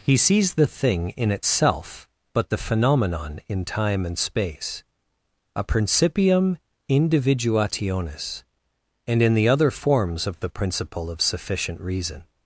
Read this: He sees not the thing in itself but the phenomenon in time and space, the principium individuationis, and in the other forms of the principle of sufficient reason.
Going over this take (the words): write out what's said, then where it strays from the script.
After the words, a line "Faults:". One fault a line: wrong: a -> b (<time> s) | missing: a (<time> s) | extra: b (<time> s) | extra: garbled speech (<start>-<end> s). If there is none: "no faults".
He sees the thing in itself but the phenomenon in time and space, a principium individuationis, and in the other forms of the principle of sufficient reason.
Faults:
missing: not (0.5 s)
wrong: the -> a (5.5 s)